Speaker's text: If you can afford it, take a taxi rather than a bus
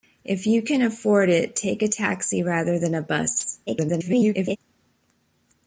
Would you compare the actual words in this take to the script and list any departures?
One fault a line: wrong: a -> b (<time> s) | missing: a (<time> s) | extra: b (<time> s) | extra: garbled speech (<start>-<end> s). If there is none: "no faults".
extra: garbled speech (3.7-4.6 s)